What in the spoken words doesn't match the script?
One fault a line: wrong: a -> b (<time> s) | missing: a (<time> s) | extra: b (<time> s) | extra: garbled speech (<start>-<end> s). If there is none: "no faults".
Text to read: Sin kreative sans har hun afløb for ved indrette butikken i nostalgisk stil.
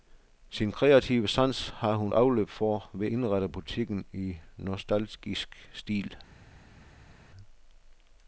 no faults